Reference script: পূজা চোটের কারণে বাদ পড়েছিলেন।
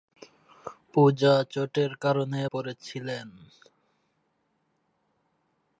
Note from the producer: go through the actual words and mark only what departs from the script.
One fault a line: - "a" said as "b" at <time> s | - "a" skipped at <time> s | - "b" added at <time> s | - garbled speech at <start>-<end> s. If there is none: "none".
- "বাদ" skipped at 2.4 s